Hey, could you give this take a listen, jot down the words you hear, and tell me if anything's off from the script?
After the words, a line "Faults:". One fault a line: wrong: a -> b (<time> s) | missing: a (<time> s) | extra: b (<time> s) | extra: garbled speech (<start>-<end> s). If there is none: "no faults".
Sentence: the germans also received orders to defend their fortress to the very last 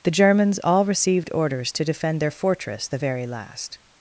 the germans all received orders to defend their fortress the very last
Faults:
wrong: also -> all (0.6 s)
missing: to (2.9 s)